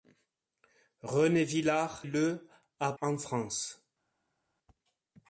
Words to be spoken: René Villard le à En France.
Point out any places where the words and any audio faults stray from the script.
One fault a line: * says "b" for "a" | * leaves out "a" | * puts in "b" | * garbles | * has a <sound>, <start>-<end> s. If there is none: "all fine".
all fine